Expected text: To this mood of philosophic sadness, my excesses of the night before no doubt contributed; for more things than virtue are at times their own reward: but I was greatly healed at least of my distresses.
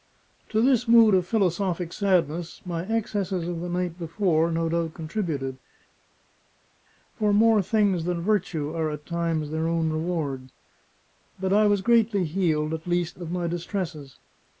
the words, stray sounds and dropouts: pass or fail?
pass